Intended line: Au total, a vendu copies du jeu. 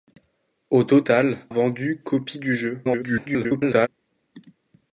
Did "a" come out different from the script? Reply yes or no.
yes